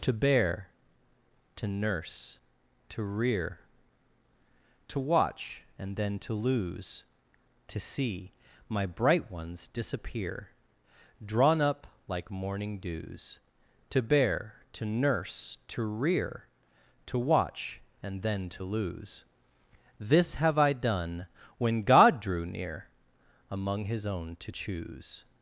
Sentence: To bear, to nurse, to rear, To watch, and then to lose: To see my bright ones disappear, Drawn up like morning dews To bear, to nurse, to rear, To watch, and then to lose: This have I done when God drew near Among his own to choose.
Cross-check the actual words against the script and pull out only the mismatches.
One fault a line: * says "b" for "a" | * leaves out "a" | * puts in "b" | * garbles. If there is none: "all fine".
all fine